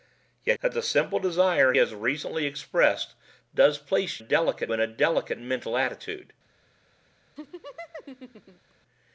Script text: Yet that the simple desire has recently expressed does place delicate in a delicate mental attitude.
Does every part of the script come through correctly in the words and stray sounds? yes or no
no